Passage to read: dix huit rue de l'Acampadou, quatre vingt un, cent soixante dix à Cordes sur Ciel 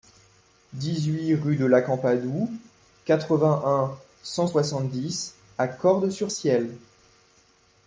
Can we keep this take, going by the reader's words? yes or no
yes